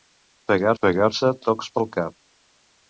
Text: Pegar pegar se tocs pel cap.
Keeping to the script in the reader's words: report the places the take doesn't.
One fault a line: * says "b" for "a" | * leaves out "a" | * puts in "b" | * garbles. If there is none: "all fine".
all fine